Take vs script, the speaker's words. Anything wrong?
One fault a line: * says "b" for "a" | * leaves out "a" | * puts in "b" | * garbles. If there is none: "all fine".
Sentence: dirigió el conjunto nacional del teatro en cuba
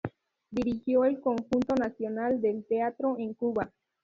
all fine